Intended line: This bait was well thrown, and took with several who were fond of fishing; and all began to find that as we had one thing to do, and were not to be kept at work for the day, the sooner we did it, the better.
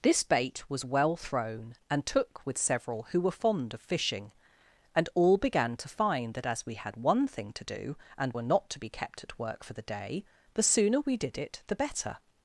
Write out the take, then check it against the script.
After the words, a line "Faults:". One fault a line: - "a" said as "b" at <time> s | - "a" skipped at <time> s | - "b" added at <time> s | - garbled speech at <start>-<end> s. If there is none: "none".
This bait was well thrown, and took with several who were fond of fishing; and all began to find that as we had one thing to do, and were not to be kept at work for the day, the sooner we did it, the better.
Faults:
none